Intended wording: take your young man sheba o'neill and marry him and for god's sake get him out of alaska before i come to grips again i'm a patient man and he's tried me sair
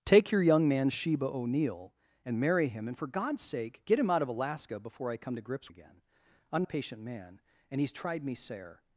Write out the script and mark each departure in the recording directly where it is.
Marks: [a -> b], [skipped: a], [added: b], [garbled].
take your young man sheba o'neill and marry him and for god's sake get him out of alaska before i come to grips again i'm a patient man and he's tried me sair